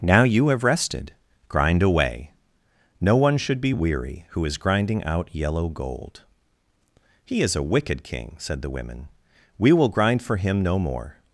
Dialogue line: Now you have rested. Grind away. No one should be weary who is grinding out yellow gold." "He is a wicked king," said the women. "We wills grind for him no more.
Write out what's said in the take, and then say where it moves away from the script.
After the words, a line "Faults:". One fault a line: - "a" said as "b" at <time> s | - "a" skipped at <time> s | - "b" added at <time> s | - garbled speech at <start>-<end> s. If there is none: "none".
Now you have rested. Grind away. No one should be weary who is grinding out yellow gold." "He is a wicked king," said the women. "We will grind for him no more.
Faults:
- "wills" said as "will" at 9.7 s